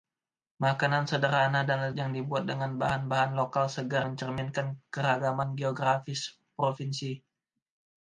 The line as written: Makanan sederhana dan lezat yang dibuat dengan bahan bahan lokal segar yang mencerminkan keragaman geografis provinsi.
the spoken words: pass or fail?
fail